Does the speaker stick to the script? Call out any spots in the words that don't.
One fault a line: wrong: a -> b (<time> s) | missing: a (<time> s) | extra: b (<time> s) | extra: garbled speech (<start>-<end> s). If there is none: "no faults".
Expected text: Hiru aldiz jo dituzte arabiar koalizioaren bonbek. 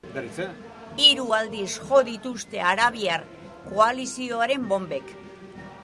no faults